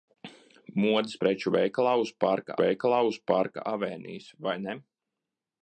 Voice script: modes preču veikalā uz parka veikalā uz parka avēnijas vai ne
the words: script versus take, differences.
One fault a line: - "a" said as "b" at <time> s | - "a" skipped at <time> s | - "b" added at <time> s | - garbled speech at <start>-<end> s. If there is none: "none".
none